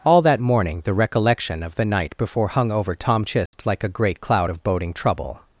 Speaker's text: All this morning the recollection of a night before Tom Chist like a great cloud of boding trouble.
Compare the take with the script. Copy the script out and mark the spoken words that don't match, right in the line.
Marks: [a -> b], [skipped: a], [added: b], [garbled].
All [this -> that] morning the recollection of [a -> the] night before [added: hung over] Tom Chist like a great cloud of boding trouble.